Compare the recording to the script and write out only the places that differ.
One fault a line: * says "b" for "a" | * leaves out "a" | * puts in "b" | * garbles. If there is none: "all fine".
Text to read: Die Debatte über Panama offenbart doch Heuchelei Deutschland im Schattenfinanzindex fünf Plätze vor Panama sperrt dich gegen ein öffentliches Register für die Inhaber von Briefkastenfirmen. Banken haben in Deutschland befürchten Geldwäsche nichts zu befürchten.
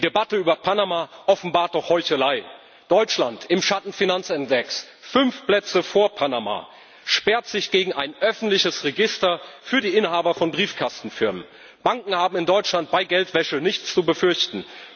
* says "sich" for "dich"
* says "bei" for "befürchten"